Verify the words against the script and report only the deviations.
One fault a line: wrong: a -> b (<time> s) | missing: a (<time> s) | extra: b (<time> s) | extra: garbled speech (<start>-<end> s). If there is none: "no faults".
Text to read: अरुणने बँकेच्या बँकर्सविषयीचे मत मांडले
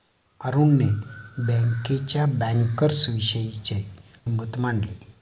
no faults